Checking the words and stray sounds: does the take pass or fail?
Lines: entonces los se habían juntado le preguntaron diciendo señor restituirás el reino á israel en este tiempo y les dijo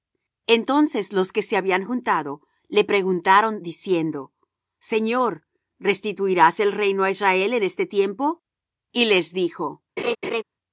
fail